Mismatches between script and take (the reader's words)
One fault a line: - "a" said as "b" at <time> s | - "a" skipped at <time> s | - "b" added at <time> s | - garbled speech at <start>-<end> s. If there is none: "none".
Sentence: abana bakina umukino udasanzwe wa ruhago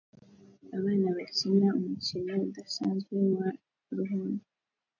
none